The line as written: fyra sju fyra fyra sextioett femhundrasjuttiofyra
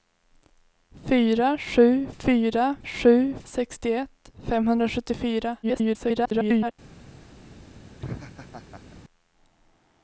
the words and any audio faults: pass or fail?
fail